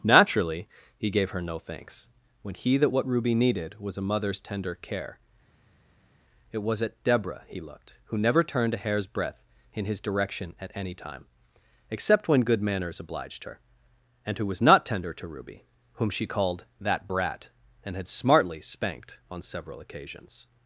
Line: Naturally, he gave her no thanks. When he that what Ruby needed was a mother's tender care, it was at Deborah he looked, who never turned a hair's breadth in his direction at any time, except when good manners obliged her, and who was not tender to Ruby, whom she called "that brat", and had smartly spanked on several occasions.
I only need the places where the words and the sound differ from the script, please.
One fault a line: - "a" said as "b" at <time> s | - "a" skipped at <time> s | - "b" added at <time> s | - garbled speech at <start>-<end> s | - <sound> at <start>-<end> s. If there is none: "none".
none